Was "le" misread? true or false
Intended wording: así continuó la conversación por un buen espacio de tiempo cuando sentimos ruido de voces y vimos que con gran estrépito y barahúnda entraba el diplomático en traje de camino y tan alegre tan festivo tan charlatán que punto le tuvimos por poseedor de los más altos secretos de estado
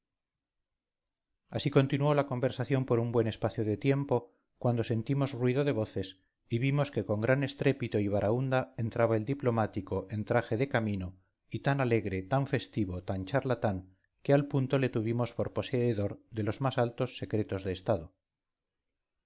false